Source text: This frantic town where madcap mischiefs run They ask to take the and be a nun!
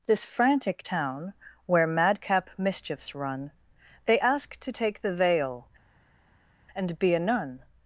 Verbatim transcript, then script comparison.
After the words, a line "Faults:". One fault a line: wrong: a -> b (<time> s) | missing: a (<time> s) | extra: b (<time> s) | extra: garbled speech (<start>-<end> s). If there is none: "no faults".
This frantic town where madcap mischiefs run They ask to take the veil, and be a nun!
Faults:
extra: veil (5.2 s)